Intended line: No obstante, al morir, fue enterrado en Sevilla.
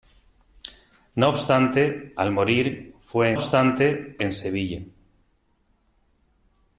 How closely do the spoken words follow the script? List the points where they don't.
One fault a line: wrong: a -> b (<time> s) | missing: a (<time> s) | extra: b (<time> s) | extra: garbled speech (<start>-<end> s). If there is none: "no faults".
wrong: enterrado -> obstante (3.3 s)